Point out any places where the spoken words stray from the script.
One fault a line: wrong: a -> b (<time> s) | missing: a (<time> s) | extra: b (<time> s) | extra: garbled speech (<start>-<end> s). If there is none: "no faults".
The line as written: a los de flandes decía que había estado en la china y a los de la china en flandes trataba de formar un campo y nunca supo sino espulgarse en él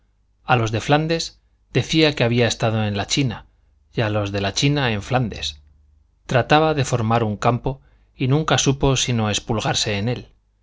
no faults